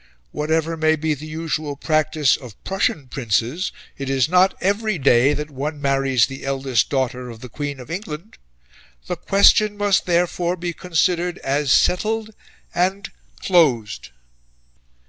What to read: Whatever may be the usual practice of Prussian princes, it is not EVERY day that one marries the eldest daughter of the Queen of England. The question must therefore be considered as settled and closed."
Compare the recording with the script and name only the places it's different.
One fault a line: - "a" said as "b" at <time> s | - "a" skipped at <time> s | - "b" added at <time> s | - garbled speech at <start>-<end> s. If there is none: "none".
none